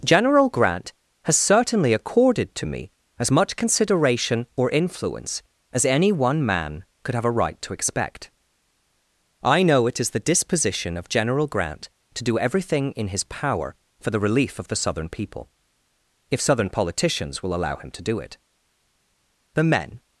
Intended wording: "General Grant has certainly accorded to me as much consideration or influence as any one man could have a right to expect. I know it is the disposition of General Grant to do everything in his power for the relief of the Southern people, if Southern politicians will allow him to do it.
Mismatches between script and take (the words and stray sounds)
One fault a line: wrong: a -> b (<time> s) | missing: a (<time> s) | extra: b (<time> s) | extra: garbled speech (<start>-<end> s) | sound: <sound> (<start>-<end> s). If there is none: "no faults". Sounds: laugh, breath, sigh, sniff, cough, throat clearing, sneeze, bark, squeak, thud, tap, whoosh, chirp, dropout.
extra: The men (19.5 s)